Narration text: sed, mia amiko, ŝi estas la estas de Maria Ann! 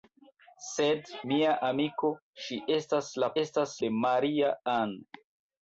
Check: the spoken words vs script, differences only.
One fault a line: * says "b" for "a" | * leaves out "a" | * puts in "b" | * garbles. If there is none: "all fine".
all fine